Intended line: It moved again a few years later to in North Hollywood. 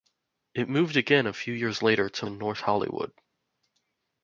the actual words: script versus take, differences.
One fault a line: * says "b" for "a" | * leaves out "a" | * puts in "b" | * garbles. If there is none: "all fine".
all fine